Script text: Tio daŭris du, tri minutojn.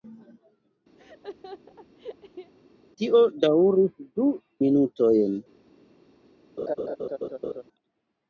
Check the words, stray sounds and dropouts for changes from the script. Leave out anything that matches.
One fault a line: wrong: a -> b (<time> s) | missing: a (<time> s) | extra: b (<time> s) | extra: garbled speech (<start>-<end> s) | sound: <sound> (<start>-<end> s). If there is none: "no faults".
sound: laugh (1.0-2.5 s)
missing: tri (4.3 s)
sound: laugh (6.6-7.6 s)